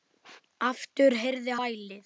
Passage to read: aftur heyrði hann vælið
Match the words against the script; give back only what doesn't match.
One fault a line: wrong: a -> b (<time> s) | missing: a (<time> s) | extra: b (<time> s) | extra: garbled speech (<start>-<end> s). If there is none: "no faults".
missing: hann (1.6 s)